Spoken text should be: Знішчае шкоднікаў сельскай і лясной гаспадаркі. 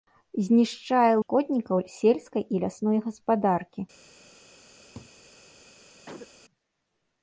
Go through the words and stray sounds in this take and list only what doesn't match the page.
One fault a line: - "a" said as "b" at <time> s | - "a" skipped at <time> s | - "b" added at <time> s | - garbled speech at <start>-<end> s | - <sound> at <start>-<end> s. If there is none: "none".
- laugh at 4.9-5.1 s
- cough at 6.1-6.3 s